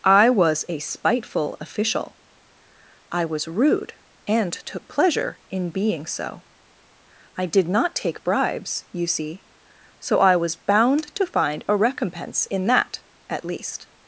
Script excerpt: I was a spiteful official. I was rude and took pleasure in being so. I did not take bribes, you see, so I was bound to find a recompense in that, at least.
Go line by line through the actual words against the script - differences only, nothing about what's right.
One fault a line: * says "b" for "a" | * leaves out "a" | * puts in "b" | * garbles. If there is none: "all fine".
all fine